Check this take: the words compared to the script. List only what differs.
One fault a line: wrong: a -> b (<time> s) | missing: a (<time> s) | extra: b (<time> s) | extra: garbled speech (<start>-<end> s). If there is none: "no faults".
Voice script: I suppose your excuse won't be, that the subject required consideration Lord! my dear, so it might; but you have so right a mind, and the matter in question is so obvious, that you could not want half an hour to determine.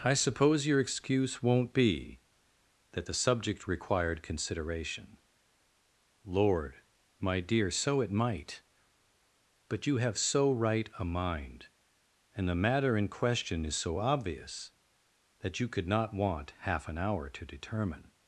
no faults